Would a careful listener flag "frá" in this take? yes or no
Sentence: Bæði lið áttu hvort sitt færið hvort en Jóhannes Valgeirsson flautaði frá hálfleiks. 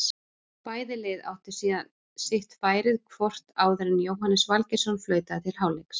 yes